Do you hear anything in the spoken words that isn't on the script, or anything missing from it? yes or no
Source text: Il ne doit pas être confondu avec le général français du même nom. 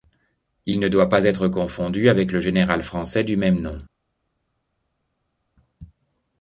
no